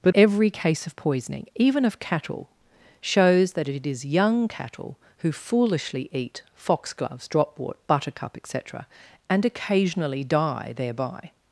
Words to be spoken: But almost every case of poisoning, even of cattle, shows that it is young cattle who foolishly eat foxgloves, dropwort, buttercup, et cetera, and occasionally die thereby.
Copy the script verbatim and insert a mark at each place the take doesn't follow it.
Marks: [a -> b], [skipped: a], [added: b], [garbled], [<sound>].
But [skipped: almost] every case of poisoning, even of cattle, shows that it is young cattle who foolishly eat foxgloves, dropwort, buttercup, et cetera, and occasionally die thereby.